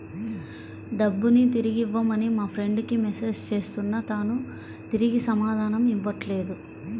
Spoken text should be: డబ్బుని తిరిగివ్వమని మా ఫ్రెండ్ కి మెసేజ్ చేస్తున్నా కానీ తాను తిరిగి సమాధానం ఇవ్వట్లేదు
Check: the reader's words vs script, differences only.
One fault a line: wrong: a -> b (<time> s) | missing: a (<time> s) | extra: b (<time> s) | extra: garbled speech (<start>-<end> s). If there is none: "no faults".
missing: కానీ (4.0 s)